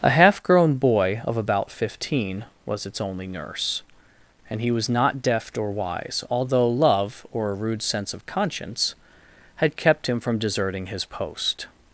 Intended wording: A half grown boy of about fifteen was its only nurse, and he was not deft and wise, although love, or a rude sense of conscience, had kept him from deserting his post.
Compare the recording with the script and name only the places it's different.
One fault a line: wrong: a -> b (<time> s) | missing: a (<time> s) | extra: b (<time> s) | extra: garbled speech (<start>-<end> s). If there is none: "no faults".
wrong: and -> or (5.6 s)